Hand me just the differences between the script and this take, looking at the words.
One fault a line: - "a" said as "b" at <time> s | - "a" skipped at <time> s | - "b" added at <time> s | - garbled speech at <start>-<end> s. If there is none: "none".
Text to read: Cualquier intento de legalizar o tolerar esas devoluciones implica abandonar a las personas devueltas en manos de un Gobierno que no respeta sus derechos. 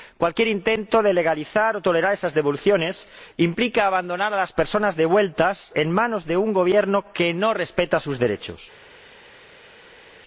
none